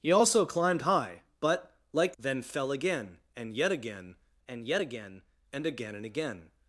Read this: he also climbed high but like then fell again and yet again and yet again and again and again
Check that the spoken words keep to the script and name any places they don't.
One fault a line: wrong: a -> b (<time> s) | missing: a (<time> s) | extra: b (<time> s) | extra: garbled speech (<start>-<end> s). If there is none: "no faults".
no faults